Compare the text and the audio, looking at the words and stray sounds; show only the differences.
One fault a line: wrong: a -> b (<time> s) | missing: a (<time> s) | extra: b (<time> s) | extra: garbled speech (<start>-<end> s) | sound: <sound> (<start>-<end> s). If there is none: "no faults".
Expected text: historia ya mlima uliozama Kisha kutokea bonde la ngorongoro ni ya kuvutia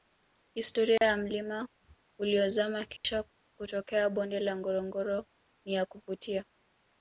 sound: dropout (1.0-1.0 s)
sound: dropout (3.0-3.0 s)